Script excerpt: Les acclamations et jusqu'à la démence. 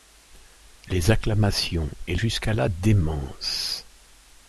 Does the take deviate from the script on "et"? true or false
false